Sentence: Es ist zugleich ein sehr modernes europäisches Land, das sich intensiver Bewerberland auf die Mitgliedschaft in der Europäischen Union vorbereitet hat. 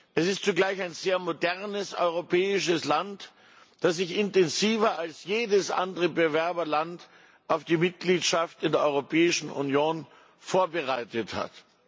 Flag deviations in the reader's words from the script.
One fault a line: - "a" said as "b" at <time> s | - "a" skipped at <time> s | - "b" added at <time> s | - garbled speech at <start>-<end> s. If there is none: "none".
- "als jedes andere" added at 5.0 s